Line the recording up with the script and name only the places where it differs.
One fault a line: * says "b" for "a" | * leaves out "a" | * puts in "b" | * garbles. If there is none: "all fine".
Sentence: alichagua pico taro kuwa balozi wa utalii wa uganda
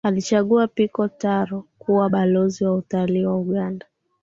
all fine